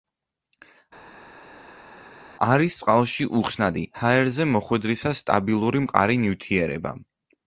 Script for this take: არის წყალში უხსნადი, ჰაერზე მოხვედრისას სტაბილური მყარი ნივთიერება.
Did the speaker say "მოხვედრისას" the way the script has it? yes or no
yes